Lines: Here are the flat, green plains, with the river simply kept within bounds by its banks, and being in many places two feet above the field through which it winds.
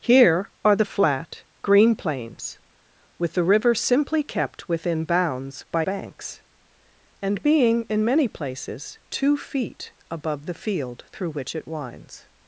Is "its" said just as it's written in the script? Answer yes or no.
no